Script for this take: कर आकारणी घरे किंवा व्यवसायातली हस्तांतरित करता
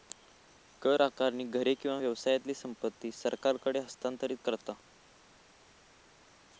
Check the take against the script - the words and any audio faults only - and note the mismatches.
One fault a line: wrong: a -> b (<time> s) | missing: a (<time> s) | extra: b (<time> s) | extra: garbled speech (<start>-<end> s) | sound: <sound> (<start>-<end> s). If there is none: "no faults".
extra: संपत्ती सरकारकडे (2.5 s)